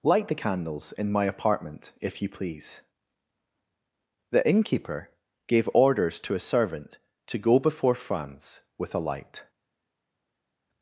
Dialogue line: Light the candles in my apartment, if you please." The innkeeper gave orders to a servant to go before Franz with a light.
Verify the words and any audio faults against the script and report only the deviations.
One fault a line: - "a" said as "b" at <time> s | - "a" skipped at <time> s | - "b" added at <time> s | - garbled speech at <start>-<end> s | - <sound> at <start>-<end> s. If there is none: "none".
none